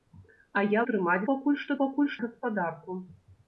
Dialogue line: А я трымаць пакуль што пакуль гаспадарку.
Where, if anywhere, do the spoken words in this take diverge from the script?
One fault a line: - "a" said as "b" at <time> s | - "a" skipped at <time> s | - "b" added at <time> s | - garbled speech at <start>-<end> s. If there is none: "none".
none